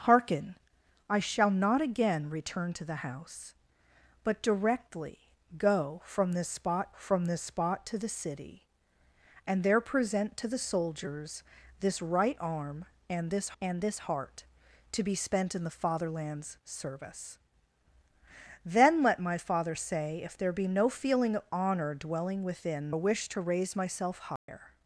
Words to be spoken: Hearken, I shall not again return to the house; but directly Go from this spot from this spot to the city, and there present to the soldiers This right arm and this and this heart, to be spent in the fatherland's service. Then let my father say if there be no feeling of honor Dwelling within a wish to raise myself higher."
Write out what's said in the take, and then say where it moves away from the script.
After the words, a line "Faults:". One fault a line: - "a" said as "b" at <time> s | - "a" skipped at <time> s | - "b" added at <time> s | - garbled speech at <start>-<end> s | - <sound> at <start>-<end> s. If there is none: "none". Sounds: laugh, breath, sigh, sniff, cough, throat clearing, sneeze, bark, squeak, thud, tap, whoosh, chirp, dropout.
Hearken, I shall not again return to the house; but directly Go from this spot from this spot to the city, and there present to the soldiers This right arm and this and this heart, to be spent in the fatherland's service. Then let my father say if there be no feeling of honor Dwelling within a wish to raise myself higher."
Faults:
- dropout at 24.4-24.5 s